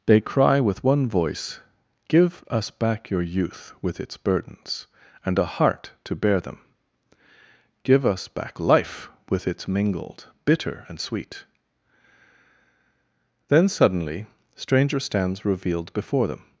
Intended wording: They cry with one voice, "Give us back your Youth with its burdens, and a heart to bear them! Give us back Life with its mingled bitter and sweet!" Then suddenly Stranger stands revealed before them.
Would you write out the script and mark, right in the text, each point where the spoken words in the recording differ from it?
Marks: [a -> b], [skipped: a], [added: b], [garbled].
They cry with one voice, "Give us back your Youth with its burdens, and a heart to bear them! Give us back Life with its mingled bitter and sweet!" Then suddenly Stranger stands revealed before them.